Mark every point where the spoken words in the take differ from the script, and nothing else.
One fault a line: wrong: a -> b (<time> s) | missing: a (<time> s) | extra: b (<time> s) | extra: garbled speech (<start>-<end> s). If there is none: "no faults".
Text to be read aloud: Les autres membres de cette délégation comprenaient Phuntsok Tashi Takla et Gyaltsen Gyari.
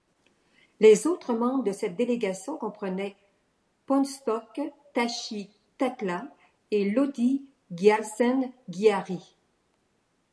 extra: Lodi (6.9 s)